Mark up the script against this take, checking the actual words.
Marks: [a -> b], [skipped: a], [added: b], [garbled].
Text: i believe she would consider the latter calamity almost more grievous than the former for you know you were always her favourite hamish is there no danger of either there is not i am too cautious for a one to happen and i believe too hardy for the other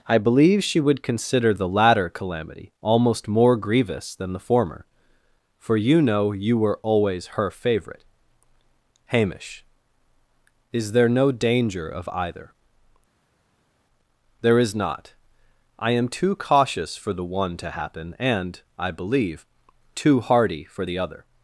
i believe she would consider the latter calamity almost more grievous than the former for you know you were always her favourite hamish is there no danger of either there is not i am too cautious for [a -> the] one to happen and i believe too hardy for the other